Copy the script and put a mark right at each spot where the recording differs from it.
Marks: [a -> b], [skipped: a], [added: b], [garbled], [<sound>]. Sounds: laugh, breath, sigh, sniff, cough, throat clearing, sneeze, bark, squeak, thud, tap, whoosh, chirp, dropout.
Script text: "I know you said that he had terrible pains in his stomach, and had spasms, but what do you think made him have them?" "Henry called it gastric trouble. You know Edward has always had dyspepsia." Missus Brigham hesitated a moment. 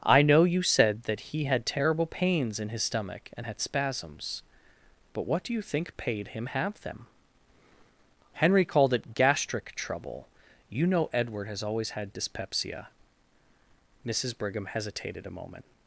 "I know you said that he had terrible pains in his stomach, and had spasms, but what do you think [made -> paid] him have them?" "Henry called it gastric trouble. You know Edward has always had dyspepsia." Missus Brigham hesitated a moment.